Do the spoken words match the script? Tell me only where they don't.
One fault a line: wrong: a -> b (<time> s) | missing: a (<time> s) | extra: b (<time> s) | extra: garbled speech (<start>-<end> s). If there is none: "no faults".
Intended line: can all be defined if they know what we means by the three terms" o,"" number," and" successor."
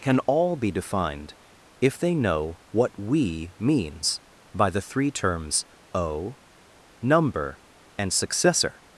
no faults